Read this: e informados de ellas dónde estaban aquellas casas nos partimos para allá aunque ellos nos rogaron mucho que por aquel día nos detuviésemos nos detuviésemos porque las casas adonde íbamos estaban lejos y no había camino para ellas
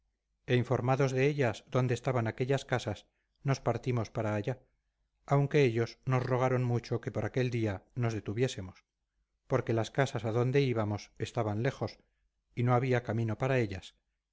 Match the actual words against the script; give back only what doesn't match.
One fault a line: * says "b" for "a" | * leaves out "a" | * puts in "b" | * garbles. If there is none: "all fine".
* leaves out "nos detuviésemos"